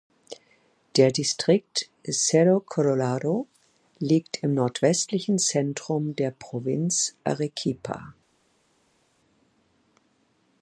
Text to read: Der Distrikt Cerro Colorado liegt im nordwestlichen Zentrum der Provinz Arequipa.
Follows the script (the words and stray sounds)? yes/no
yes